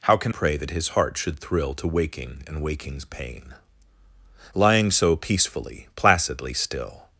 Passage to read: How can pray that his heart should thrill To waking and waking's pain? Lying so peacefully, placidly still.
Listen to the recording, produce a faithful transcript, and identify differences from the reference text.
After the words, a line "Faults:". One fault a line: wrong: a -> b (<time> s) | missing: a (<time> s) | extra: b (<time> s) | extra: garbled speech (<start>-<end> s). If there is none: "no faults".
How can pray that his heart should thrill To waking and waking's pain? Lying so peacefully, placidly still.
Faults:
no faults